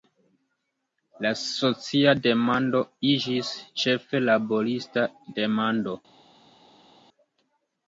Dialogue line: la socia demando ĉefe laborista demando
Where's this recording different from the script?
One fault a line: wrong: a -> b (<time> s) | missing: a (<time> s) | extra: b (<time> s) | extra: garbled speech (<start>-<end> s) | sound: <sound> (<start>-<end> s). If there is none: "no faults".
extra: iĝis (3.1 s)